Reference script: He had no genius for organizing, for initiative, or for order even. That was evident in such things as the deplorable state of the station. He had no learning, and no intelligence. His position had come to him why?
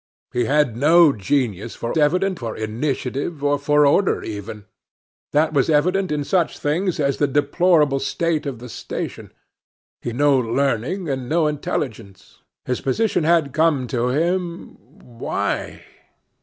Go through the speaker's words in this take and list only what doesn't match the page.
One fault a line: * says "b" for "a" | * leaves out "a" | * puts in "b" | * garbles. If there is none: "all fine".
* says "evident" for "organizing"
* leaves out "had"